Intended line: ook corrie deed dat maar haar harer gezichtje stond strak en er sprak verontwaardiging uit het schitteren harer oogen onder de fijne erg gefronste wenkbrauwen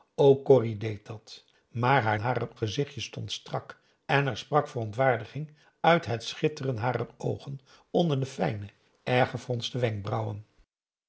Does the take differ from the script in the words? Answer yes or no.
no